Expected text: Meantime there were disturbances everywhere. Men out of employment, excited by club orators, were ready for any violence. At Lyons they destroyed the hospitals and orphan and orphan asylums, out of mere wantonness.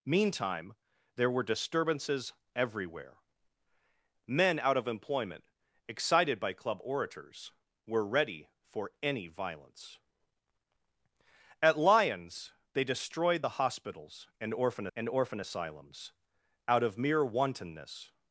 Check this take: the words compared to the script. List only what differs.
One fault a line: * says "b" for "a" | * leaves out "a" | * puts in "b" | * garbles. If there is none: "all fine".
all fine